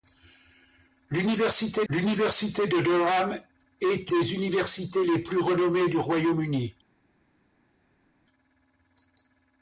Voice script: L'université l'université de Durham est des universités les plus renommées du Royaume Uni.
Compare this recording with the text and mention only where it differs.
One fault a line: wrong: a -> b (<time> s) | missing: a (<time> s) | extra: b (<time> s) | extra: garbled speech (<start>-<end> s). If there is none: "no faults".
no faults